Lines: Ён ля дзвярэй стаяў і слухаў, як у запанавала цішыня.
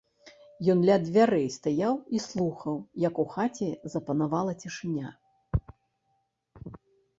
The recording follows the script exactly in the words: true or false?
false